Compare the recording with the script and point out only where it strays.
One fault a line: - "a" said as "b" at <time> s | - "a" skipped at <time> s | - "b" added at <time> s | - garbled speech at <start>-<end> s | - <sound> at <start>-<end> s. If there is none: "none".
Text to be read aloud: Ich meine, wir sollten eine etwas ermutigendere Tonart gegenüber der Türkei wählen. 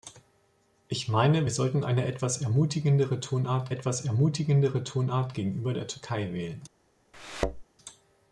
- "etwas ermutigendere Tonart" added at 3.7 s
- thud at 7.1-7.6 s